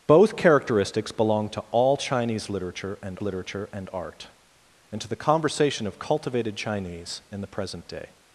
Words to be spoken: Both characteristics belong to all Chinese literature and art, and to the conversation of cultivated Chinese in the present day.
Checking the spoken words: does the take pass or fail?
fail